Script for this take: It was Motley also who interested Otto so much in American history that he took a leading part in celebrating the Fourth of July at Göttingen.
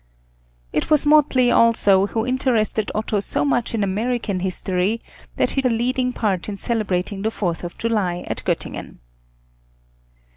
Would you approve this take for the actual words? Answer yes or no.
no